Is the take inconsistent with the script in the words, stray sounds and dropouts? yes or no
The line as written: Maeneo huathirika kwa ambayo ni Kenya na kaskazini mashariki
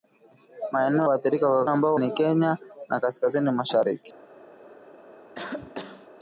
yes